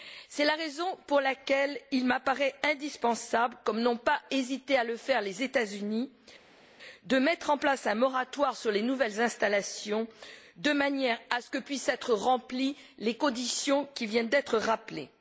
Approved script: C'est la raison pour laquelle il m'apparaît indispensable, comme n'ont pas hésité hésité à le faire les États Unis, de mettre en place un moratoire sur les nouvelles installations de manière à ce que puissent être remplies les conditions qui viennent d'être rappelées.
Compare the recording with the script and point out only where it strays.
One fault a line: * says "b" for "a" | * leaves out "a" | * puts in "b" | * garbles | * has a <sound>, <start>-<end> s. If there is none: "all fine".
* leaves out "hésité"